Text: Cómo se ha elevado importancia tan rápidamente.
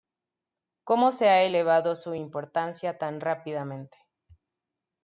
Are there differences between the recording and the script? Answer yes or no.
yes